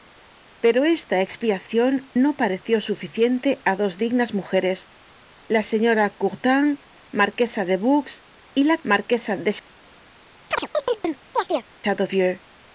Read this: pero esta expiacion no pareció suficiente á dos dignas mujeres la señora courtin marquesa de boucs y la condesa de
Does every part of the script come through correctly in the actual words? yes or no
no